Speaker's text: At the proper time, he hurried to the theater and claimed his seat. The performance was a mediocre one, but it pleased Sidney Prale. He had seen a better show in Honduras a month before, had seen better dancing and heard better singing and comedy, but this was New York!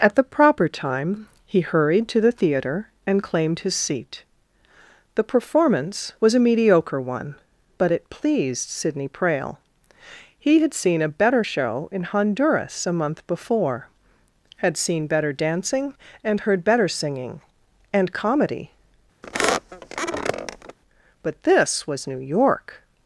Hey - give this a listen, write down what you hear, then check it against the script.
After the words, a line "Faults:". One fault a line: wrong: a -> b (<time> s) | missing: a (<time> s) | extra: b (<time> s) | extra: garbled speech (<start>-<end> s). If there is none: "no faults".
At the proper time, he hurried to the theater and claimed his seat. The performance was a mediocre one, but it pleased Sidney Prale. He had seen a better show in Honduras a month before, had seen better dancing and heard better singing and comedy, but this was New York!
Faults:
no faults